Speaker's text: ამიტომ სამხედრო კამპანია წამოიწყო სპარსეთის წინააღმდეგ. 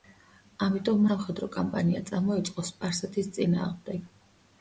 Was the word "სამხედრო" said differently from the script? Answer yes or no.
no